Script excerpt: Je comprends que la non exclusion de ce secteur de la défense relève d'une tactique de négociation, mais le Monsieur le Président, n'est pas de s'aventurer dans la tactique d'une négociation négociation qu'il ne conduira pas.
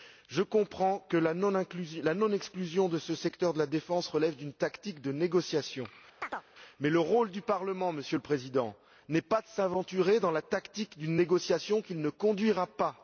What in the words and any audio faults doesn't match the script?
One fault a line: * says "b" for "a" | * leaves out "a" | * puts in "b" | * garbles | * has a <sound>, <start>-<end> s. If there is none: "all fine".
* has a chirp, 6.2-6.4 s
* puts in "rôle du Parlement"
* leaves out "négociation"